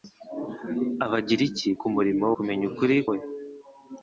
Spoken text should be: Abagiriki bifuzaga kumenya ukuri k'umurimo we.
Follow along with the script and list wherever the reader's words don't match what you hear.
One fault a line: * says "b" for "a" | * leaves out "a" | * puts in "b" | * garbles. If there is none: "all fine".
* says "k'umurimo" for "bifuzaga"
* leaves out "k'umurimo"